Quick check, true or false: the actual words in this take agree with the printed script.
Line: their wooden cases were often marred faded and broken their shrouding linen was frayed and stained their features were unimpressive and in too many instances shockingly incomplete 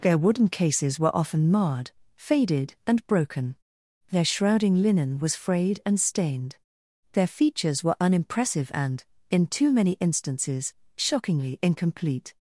true